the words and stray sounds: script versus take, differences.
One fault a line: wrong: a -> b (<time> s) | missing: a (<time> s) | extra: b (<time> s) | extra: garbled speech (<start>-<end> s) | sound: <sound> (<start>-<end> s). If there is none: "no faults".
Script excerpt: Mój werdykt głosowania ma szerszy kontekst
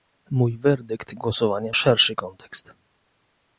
missing: ma (1.7 s)